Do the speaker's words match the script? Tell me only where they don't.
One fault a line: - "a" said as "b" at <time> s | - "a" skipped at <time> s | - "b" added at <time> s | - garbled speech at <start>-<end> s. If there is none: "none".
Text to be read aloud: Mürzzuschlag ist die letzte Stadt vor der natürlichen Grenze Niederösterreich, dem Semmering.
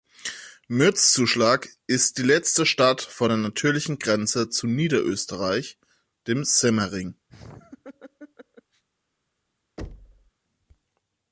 - "zu" added at 4.5 s